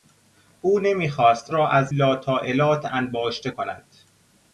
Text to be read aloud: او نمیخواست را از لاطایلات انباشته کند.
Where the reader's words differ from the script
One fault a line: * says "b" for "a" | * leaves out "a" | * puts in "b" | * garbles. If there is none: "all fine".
all fine